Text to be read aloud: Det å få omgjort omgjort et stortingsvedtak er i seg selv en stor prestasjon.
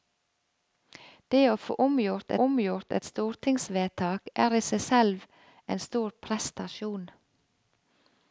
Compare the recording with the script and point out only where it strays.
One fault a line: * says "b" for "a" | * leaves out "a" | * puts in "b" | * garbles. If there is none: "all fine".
all fine